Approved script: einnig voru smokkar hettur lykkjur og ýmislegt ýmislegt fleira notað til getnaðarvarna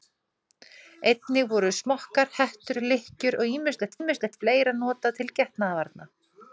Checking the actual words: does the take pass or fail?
pass